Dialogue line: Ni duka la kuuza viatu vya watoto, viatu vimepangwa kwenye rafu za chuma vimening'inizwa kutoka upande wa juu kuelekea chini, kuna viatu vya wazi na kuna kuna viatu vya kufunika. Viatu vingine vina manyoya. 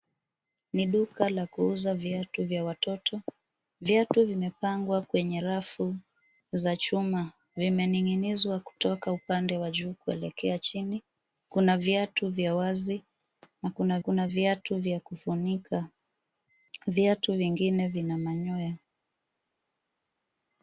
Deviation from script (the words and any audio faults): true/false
false